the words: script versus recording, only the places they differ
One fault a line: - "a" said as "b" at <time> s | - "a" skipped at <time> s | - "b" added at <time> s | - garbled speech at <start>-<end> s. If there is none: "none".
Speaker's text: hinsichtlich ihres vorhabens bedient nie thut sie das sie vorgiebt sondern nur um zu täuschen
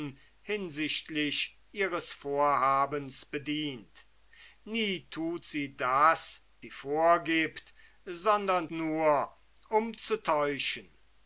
none